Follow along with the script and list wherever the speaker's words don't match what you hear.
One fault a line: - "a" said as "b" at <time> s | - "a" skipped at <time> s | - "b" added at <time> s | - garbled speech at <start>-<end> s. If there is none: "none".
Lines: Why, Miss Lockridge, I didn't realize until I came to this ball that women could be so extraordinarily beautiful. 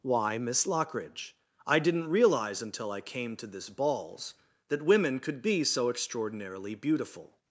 - "ball" said as "balls" at 3.7 s